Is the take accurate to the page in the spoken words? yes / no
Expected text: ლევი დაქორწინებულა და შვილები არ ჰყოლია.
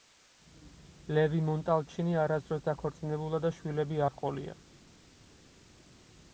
no